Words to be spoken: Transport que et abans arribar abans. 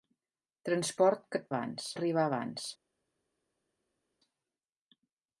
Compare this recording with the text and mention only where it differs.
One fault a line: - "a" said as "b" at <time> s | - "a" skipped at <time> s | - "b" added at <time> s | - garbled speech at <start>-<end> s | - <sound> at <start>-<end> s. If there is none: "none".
none